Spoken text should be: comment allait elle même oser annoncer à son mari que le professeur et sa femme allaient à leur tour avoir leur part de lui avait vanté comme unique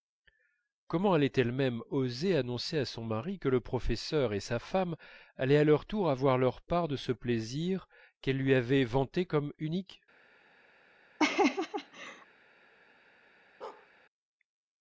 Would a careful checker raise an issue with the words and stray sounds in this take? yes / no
yes